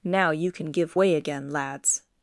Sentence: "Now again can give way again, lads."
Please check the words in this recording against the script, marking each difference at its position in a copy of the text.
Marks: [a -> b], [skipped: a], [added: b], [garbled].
"Now [again -> you] can give way again, lads."